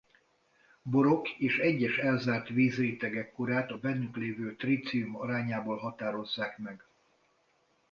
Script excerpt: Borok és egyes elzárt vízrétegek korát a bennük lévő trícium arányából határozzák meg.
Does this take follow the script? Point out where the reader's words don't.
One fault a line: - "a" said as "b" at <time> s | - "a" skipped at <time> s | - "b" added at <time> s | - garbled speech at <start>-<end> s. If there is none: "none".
none